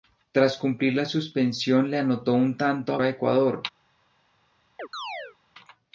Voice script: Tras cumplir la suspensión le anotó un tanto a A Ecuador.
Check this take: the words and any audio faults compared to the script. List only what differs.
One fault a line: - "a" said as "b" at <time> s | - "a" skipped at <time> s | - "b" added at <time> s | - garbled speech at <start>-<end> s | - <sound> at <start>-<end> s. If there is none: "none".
- chirp at 4.8-5.4 s